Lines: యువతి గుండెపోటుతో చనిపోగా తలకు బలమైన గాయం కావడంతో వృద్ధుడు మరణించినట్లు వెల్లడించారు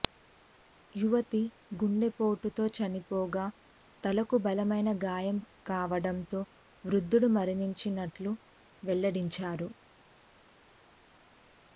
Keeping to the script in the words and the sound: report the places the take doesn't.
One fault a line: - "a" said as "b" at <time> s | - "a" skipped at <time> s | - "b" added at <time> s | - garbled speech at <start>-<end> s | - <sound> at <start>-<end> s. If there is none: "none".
none